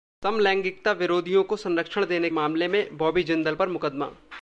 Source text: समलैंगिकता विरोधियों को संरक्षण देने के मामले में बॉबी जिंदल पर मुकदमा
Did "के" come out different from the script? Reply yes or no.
yes